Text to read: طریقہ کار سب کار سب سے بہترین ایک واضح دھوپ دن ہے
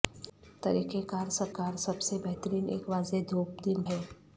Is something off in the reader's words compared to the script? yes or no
no